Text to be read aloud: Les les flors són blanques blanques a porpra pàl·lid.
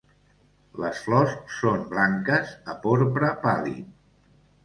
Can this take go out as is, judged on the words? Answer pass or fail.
fail